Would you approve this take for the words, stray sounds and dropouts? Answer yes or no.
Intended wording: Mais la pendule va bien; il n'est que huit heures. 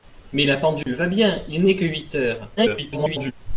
no